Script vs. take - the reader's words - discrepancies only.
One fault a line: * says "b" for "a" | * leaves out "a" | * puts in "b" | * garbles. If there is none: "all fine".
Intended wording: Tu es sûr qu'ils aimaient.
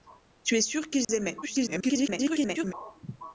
* garbles